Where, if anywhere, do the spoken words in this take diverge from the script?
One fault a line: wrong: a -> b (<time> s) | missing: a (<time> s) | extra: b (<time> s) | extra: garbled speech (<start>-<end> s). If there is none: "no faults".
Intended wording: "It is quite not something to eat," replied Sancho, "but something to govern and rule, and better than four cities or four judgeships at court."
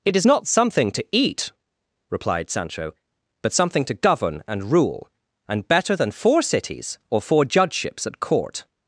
missing: quite (0.2 s)